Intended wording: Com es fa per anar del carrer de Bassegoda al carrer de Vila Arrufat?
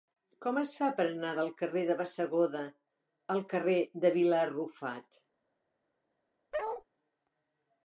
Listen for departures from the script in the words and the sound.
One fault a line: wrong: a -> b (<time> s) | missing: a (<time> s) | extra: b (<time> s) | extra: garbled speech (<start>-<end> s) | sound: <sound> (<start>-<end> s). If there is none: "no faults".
sound: bark (6.5-6.8 s)